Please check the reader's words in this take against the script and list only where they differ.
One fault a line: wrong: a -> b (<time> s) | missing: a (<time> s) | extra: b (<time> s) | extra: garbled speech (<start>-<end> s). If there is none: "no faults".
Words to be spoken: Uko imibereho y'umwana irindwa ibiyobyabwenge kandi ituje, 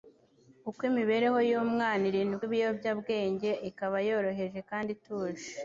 extra: ikaba yoroheje (3.7 s)